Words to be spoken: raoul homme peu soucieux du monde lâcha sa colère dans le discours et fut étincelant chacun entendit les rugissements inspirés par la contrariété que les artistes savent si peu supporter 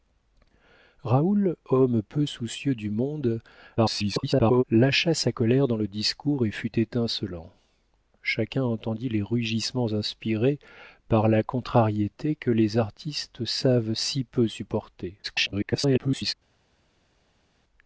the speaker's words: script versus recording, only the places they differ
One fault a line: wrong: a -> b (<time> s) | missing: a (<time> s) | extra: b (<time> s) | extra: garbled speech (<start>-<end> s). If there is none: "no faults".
extra: garbled speech (3.8-4.6 s)
extra: garbled speech (15.2-16.3 s)